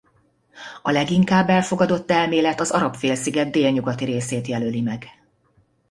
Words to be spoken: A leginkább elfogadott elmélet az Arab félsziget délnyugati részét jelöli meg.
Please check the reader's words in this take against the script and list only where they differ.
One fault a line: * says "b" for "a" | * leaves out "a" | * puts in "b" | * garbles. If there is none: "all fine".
all fine